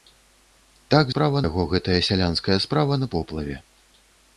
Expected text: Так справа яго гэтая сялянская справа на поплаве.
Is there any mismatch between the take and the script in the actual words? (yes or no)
no